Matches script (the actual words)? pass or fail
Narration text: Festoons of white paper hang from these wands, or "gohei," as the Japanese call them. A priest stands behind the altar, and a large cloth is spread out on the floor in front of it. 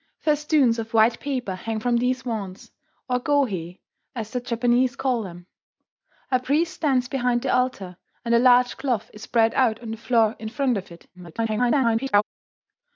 fail